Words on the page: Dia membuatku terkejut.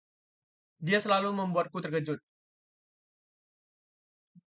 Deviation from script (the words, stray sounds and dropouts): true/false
true